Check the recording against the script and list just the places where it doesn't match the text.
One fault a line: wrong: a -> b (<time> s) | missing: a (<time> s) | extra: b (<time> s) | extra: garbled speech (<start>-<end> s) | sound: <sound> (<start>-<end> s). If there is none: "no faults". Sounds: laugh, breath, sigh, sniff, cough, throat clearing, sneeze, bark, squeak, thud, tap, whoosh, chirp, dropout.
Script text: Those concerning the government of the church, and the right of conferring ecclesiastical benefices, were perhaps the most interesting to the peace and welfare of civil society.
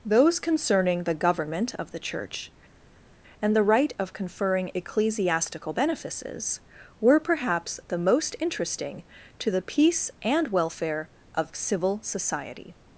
no faults